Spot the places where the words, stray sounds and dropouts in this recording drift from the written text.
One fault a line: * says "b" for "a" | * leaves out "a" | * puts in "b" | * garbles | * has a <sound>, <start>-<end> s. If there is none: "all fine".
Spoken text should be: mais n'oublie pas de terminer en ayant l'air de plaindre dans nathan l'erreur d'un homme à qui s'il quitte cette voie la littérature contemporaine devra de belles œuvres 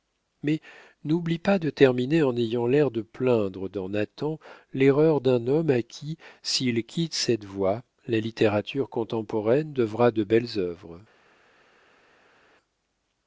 all fine